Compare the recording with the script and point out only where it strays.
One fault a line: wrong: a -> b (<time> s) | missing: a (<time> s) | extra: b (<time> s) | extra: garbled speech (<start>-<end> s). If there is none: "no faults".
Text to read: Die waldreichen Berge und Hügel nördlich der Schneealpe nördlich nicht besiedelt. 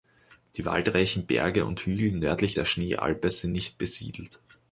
wrong: nördlich -> sind (3.3 s)